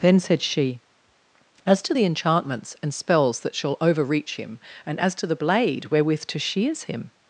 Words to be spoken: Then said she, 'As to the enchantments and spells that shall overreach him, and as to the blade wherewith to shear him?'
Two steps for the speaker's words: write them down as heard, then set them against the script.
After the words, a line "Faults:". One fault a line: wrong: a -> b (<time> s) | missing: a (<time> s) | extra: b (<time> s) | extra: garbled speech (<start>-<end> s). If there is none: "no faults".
Then said she, 'As to the enchantments and spells that shall overreach him, and as to the blade wherewith to shears him?'
Faults:
wrong: shear -> shears (6.4 s)